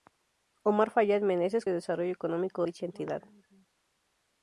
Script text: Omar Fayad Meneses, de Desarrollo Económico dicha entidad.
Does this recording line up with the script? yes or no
yes